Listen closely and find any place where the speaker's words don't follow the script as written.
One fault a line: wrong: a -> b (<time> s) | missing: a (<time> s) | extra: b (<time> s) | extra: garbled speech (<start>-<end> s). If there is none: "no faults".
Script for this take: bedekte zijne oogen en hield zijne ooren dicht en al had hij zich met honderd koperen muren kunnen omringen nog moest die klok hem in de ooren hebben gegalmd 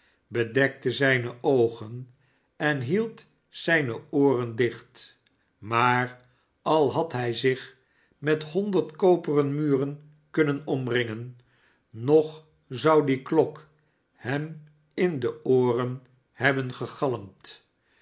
wrong: en -> maar (5.6 s)
wrong: moest -> zou (12.7 s)